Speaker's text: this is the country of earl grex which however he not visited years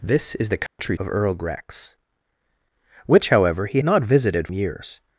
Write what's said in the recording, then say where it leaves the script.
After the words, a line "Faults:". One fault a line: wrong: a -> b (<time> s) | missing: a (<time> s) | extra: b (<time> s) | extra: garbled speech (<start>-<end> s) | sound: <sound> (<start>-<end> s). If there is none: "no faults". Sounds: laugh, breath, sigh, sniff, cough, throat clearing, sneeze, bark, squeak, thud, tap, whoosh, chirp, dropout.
this is the country of earl grex which however he not visited years
Faults:
sound: dropout (0.7-0.8 s)